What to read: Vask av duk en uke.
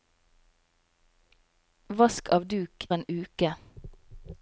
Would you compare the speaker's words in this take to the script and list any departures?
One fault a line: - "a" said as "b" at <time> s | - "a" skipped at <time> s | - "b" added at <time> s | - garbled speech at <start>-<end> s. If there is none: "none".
none